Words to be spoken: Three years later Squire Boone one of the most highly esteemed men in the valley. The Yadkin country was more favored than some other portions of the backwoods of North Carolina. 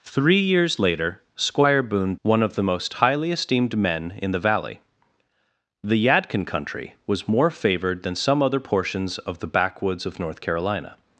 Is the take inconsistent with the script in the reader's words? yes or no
no